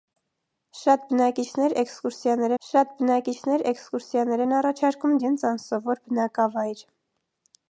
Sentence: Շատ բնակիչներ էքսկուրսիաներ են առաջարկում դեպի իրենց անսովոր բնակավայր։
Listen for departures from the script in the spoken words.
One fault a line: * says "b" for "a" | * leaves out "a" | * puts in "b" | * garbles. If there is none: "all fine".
* puts in "շատ բնակիչներ էքսկուրսիաներ"
* leaves out "դեպի"